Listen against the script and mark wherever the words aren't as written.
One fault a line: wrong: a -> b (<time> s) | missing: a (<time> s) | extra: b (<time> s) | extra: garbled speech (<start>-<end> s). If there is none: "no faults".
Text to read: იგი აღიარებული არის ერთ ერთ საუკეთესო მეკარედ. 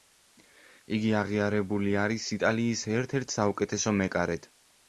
extra: იტალიის (2.4 s)